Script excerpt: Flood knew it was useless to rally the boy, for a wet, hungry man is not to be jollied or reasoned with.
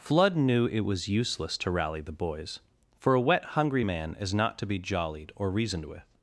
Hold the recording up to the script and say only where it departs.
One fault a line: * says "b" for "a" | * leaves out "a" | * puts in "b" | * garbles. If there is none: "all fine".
* says "boys" for "boy"